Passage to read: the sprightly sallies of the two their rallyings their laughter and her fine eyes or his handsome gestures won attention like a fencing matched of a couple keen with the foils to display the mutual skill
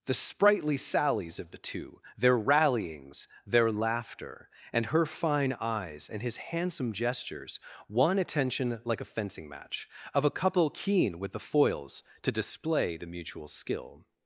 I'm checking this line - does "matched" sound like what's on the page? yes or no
no